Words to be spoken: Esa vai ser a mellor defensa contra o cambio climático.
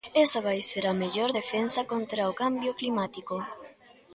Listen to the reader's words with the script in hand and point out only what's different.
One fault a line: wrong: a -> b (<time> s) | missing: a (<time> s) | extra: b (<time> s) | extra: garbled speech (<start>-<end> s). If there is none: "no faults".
no faults